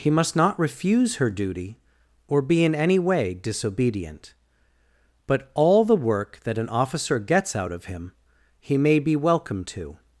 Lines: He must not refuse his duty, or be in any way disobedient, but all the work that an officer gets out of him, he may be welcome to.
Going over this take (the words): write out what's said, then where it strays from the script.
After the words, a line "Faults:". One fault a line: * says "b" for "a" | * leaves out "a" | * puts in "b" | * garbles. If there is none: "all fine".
He must not refuse her duty, or be in any way disobedient, but all the work that an officer gets out of him, he may be welcome to.
Faults:
* says "her" for "his"